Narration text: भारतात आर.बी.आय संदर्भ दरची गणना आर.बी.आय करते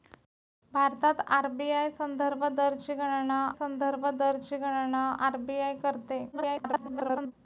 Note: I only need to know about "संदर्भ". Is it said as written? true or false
true